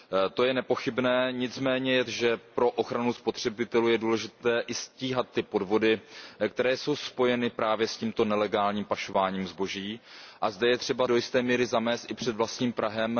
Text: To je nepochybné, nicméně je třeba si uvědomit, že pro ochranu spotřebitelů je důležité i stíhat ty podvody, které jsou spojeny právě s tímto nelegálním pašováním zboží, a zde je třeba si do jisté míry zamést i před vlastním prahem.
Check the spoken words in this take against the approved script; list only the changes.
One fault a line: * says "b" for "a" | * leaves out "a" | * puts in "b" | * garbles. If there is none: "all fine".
* leaves out "třeba si uvědomit"
* leaves out "si"